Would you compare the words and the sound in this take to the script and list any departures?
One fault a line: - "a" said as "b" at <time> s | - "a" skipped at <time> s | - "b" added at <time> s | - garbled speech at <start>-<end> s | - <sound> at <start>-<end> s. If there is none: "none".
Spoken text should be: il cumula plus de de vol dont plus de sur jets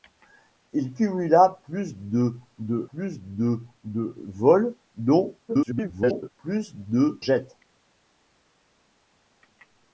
- "plus de de" added at 2.9 s
- garbled speech at 5.5-6.3 s
- "sur" skipped at 7.2 s